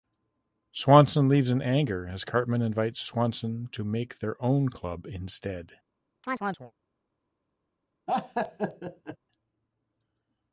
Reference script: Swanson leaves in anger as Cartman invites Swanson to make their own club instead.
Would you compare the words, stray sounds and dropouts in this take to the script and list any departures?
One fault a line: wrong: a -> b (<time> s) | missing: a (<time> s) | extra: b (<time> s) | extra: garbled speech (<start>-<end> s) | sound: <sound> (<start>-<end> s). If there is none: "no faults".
sound: chirp (6.2-6.7 s)
sound: laugh (8.1-9.2 s)